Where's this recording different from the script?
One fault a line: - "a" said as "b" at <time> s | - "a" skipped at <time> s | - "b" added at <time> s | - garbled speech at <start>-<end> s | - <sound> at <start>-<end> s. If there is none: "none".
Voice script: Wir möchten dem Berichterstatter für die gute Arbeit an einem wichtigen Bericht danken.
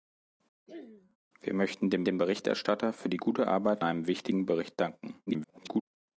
- throat clearing at 0.7-1.2 s
- "dem" added at 2.0 s
- "an" skipped at 3.8 s
- garbled speech at 5.3-5.8 s